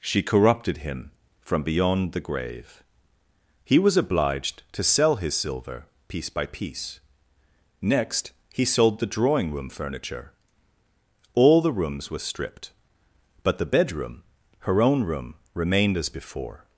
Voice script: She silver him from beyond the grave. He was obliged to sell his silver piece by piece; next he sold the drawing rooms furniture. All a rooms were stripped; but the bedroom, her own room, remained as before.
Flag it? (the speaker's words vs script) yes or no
yes